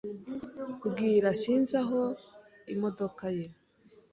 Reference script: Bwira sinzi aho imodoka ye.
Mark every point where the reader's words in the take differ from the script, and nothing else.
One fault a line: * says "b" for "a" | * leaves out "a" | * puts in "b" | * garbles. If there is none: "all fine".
all fine